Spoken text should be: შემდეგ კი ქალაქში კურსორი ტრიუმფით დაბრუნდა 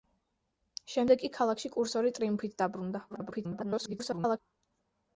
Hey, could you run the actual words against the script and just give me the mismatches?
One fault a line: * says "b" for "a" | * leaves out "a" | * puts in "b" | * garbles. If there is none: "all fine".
* garbles